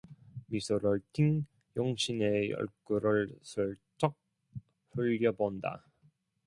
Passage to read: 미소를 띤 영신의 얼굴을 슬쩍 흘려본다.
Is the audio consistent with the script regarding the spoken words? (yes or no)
yes